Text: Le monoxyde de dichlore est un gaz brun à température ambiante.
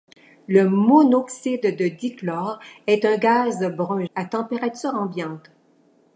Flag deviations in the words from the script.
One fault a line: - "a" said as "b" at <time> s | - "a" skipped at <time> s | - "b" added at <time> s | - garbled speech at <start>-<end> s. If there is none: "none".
none